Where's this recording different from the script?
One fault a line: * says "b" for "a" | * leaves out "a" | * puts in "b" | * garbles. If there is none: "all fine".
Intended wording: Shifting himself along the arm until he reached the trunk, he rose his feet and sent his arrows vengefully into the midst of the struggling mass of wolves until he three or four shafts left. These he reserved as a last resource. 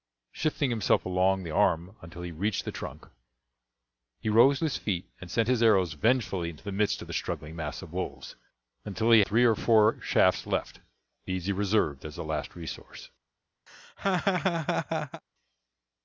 all fine